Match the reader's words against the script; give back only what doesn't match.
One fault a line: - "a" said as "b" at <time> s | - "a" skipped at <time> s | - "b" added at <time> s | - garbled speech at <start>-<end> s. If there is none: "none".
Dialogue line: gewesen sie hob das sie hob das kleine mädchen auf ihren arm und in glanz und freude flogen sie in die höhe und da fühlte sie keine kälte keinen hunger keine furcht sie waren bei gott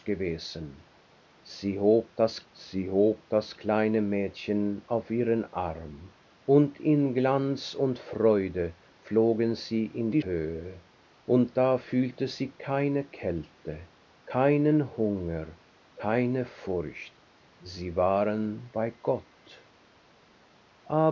none